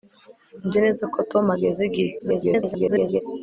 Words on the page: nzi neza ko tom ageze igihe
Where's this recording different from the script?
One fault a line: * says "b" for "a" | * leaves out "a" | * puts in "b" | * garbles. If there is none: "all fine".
* garbles